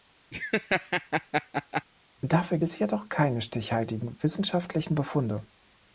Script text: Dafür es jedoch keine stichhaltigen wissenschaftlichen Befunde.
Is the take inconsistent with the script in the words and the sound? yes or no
yes